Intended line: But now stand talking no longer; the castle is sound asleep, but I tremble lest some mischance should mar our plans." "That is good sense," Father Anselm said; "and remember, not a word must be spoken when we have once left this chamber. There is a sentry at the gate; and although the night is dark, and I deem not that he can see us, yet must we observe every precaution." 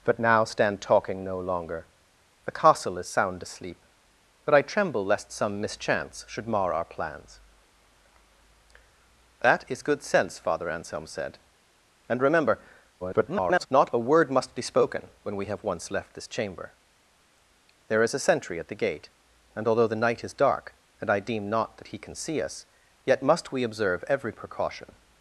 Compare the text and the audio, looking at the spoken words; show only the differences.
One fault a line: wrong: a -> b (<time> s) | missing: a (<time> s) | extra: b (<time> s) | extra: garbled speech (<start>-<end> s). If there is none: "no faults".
extra: garbled speech (13.0-13.7 s)